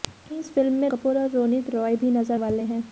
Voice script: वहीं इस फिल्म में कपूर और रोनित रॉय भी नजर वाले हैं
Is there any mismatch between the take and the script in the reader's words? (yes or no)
no